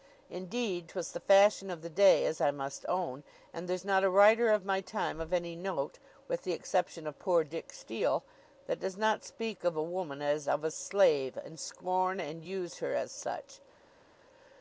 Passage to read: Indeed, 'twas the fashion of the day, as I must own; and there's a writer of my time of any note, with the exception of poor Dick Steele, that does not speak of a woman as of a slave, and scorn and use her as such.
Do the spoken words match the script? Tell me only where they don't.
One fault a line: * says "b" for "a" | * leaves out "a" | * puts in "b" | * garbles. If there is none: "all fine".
* puts in "not"